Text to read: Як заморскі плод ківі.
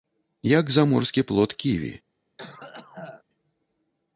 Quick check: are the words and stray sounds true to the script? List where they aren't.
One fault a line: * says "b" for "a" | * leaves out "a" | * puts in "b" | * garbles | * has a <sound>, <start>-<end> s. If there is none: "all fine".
* has a cough, 2.4-3.2 s